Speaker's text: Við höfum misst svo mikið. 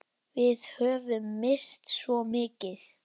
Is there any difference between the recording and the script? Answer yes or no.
no